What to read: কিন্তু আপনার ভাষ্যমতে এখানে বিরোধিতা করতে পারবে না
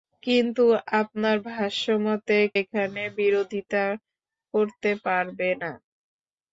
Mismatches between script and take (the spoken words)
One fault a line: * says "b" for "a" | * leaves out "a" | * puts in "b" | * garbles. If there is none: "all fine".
all fine